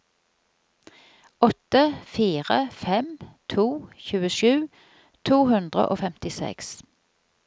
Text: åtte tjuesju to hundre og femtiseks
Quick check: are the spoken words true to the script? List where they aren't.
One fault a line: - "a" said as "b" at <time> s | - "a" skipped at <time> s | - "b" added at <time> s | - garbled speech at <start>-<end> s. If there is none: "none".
- "fire fem to" added at 2.0 s